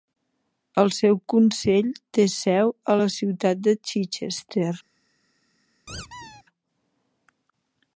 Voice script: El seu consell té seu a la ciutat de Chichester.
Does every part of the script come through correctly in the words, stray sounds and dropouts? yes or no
no